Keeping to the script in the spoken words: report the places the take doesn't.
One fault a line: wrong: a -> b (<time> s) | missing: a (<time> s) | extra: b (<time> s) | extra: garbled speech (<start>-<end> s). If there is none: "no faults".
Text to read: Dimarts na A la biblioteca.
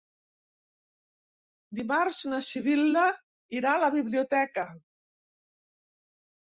extra: Sibil·la irà (2.5 s)